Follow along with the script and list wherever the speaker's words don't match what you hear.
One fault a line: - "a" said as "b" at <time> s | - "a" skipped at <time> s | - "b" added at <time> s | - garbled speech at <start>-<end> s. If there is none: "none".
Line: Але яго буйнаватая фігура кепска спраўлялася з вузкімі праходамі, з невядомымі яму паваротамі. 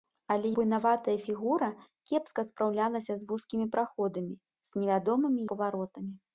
- "яго" skipped at 0.5 s
- "яму" skipped at 5.4 s